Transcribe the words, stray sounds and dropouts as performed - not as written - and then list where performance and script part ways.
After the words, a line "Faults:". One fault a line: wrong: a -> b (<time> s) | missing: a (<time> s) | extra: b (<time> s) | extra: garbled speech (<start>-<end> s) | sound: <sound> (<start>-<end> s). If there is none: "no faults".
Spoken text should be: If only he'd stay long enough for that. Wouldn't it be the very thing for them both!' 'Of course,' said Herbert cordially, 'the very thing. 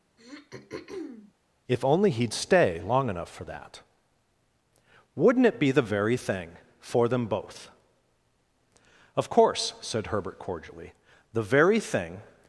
If only he'd stay long enough for that. Wouldn't it be the very thing for them both!' 'Of course,' said Herbert cordially, 'the very thing.
Faults:
sound: throat clearing (0.2-1.3 s)